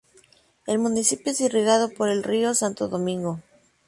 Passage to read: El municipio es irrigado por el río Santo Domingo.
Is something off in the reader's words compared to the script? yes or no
no